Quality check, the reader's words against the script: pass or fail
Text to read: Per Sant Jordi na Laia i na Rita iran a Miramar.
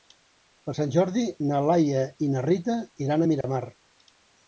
pass